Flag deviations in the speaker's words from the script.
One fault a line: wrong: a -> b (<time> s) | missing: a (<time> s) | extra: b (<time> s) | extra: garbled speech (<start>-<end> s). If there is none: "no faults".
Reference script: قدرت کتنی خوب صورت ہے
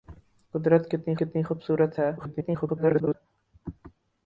extra: کتنی (1.2 s)
extra: garbled speech (2.2-3.1 s)